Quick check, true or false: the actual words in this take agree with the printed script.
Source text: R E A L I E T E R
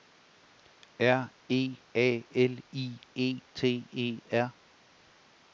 true